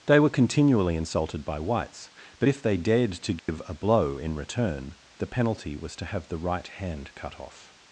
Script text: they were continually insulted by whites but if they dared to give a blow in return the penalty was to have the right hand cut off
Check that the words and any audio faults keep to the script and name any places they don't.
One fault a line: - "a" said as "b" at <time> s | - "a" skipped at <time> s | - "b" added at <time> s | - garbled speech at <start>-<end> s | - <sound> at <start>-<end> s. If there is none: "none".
- dropout at 3.4-3.5 s